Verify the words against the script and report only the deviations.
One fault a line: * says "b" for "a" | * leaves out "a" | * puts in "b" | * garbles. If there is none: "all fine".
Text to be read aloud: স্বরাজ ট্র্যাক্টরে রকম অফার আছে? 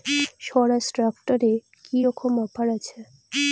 * puts in "কি"